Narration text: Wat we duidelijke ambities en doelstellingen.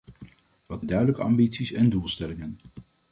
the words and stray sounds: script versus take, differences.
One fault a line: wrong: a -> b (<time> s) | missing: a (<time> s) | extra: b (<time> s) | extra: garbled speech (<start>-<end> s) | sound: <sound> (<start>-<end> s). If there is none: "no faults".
no faults